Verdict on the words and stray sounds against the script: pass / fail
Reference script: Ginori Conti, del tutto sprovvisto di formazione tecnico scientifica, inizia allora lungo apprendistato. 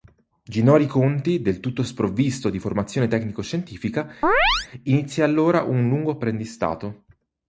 fail